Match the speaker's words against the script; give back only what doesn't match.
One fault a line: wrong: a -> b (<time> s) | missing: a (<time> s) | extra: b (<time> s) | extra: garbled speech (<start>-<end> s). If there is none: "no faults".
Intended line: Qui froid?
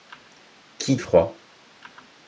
no faults